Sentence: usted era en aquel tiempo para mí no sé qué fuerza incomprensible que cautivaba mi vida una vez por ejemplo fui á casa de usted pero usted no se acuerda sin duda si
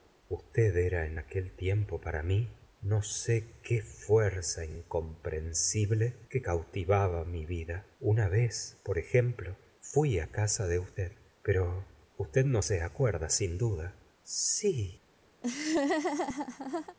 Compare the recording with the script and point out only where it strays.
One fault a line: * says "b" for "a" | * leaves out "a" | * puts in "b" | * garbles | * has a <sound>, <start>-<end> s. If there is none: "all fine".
* has a laugh, 15.4-17.0 s